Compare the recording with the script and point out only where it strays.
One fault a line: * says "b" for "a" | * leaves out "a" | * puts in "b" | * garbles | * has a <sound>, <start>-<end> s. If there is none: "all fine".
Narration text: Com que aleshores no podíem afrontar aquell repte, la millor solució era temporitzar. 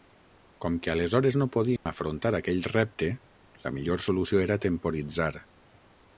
* has a dropout, 1.8-1.9 s